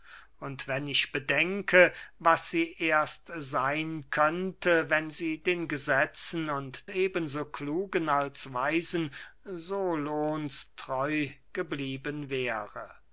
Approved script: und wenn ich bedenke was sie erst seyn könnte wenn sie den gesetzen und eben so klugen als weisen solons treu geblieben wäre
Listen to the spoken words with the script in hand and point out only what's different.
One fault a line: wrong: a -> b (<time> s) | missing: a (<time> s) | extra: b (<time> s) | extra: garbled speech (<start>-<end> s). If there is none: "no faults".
no faults